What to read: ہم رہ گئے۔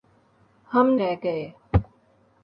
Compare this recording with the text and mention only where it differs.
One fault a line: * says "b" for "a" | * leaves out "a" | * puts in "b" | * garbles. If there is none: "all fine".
all fine